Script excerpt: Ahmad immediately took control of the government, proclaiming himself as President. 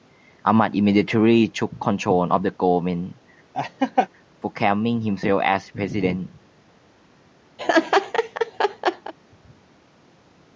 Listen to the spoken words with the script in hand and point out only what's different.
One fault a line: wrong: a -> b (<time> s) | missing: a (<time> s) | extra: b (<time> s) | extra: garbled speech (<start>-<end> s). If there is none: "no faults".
no faults